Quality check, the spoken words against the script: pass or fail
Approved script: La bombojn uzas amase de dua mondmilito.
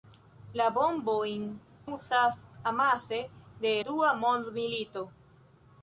pass